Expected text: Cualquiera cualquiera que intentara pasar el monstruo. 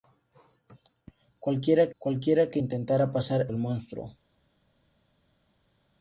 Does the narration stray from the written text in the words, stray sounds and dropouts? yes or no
no